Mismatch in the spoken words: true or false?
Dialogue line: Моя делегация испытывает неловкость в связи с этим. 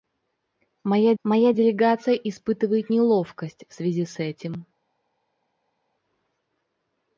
true